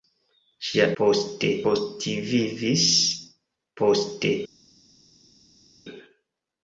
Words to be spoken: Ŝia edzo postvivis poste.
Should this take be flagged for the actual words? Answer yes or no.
yes